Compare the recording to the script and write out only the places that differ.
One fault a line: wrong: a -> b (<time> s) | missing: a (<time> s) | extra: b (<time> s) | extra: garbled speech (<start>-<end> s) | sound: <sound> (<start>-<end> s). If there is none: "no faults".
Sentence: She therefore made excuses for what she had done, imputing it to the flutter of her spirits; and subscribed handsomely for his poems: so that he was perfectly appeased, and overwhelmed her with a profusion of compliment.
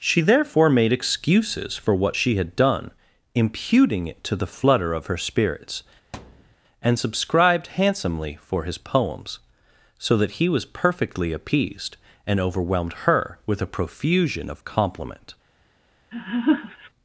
sound: thud (6.1-6.6 s)
sound: laugh (16.1-16.9 s)